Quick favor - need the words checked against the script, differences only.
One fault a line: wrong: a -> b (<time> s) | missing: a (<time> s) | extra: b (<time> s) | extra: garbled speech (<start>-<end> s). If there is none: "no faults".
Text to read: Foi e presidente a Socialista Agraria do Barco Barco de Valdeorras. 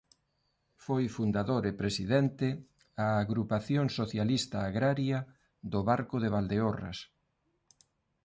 extra: fundador (1.2 s)
extra: Agrupación (3.2 s)
missing: Barco (6.2 s)